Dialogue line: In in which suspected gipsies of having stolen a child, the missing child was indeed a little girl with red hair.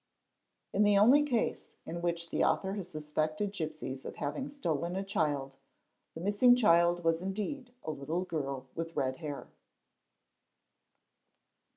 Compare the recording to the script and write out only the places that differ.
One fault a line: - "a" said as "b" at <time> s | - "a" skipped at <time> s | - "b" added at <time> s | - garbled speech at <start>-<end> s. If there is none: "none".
- "the only case" added at 0.8 s
- "the author has" added at 2.3 s